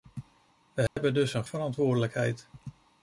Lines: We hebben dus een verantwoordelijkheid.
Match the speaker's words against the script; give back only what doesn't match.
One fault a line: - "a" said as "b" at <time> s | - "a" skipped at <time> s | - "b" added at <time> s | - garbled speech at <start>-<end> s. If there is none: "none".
none